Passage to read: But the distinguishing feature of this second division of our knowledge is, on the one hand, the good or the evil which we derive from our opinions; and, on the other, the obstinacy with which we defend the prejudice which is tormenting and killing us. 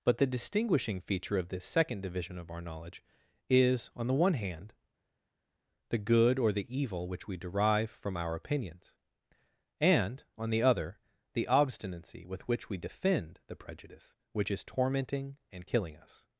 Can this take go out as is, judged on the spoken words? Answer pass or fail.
pass